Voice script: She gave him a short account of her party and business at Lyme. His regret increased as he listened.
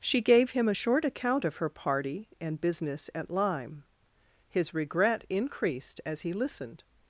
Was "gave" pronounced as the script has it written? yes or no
yes